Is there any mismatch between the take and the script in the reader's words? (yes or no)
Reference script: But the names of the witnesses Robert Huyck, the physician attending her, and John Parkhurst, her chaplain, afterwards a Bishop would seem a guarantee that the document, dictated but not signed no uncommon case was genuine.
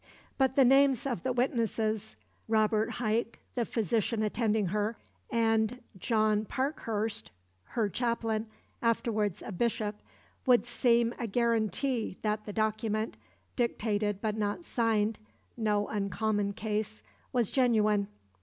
no